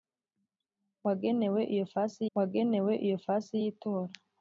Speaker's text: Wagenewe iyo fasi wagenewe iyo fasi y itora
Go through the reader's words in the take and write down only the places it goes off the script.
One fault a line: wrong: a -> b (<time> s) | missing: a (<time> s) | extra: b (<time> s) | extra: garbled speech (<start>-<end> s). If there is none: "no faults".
no faults